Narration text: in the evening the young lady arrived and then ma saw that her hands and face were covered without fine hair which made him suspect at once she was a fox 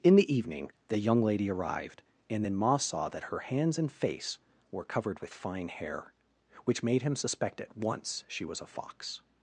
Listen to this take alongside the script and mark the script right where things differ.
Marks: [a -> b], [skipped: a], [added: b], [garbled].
in the evening the young lady arrived and then ma saw that her hands and face were covered [without -> with] fine hair which made him suspect at once she was a fox